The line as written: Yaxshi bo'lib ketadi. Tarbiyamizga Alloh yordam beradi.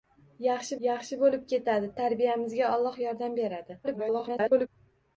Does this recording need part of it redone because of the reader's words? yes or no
yes